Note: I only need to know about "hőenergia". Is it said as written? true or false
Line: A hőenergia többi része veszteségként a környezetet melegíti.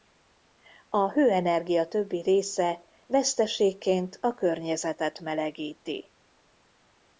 true